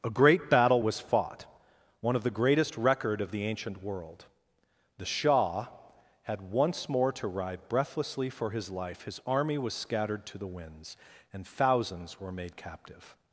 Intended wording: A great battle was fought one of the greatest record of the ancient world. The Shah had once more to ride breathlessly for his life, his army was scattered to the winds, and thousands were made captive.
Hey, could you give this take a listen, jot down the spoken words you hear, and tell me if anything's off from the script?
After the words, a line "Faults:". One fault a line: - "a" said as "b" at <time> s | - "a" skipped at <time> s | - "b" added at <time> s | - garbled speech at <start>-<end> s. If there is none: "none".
A great battle was fought one of the greatest record of the ancient world. The Shah had once more to ride breathlessly for his life, his army was scattered to the winds, and thousands were made captive.
Faults:
none